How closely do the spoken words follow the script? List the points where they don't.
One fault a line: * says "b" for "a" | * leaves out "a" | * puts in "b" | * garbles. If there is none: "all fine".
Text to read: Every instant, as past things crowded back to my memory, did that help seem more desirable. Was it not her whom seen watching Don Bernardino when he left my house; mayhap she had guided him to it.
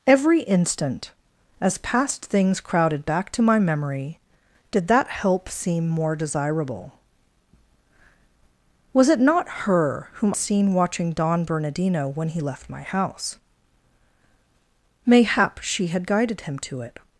all fine